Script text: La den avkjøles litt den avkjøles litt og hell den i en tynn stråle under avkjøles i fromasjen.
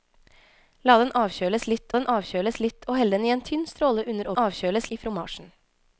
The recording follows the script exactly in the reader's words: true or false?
true